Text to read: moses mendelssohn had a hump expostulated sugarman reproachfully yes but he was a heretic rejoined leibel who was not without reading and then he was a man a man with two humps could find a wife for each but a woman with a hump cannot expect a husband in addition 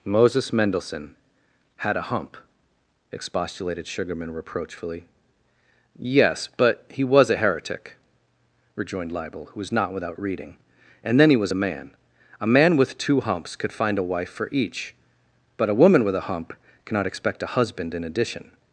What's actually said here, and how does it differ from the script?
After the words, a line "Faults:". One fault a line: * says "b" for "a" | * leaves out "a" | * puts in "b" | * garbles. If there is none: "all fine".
moses mendelssohn had a hump expostulated sugarman reproachfully yes but he was a heretic rejoined leibel who was not without reading and then he was a man a man with two humps could find a wife for each but a woman with a hump cannot expect a husband in addition
Faults:
all fine